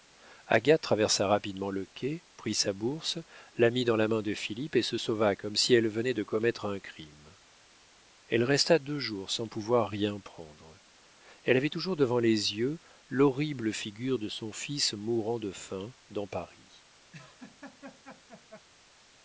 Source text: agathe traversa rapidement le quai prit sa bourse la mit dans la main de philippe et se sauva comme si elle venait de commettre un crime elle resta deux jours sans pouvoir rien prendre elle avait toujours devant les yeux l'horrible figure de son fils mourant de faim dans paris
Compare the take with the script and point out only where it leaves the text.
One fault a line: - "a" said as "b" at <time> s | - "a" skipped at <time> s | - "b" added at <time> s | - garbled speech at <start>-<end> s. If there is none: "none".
none